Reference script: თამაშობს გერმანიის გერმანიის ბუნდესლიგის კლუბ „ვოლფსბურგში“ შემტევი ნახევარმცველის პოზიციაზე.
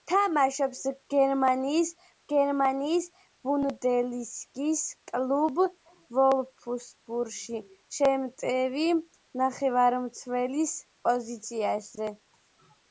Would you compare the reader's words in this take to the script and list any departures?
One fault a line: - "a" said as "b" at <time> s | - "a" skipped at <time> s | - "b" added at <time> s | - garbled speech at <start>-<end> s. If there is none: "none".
none